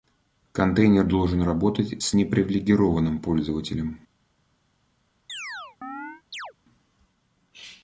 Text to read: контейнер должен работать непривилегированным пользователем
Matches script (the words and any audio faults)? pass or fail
fail